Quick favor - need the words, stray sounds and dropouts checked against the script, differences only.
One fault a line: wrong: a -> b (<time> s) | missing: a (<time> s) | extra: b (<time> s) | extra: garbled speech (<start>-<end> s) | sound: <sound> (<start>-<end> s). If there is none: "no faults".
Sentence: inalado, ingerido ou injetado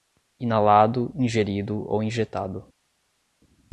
no faults